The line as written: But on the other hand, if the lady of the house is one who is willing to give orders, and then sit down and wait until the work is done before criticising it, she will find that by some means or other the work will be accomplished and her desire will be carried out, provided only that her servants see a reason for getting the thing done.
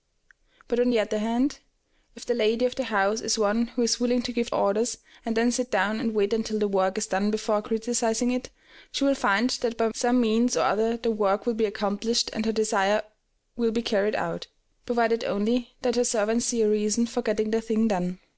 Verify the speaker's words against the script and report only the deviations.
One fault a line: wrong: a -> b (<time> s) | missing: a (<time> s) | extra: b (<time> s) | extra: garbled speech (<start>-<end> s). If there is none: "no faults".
no faults